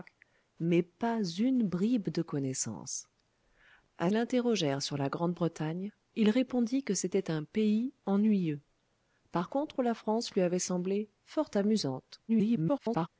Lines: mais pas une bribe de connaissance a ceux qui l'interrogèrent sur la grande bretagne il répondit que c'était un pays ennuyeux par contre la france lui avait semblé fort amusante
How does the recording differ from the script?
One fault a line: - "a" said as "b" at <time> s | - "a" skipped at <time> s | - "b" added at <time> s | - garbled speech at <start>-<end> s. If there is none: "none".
- "ceux qui" skipped at 4.1 s
- garbled speech at 12.3-13.1 s